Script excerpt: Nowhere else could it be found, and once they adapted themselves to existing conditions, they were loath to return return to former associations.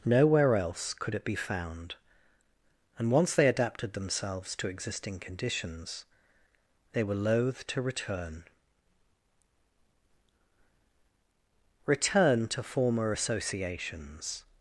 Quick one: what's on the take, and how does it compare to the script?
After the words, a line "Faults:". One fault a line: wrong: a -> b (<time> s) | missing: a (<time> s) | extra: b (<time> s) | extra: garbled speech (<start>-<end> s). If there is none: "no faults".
Nowhere else could it be found, and once they adapted themselves to existing conditions, they were loath to return return to former associations.
Faults:
no faults